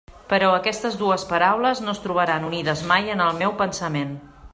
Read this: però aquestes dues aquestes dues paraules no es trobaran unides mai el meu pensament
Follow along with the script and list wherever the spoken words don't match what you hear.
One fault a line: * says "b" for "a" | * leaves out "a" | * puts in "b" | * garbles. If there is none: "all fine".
* leaves out "aquestes dues"
* puts in "en"